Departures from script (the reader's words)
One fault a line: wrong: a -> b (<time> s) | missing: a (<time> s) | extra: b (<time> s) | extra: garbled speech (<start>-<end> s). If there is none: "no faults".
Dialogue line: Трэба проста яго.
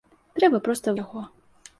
no faults